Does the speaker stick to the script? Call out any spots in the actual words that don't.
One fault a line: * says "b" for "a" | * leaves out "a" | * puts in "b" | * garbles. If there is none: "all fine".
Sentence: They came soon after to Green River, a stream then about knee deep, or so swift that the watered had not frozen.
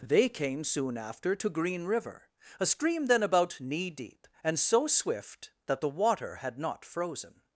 * says "and" for "or"
* says "water" for "watered"